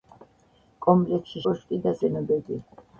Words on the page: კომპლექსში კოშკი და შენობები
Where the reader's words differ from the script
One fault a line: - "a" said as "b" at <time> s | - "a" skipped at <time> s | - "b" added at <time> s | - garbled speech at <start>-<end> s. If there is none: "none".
none